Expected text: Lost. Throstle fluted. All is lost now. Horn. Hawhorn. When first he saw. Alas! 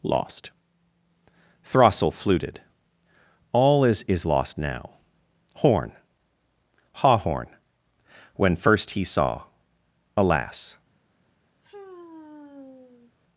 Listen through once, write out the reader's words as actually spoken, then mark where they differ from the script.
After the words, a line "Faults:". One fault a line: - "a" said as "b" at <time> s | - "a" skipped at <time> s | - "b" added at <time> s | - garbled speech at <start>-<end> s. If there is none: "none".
Lost. Throstle fluted. All is is lost now. Horn. Hawhorn. When first he saw. Alas!
Faults:
- "is" added at 4.1 s